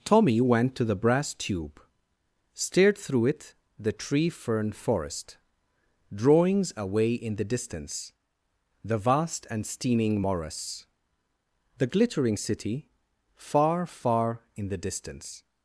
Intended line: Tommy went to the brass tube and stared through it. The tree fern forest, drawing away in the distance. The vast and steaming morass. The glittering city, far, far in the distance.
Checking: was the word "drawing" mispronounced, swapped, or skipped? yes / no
yes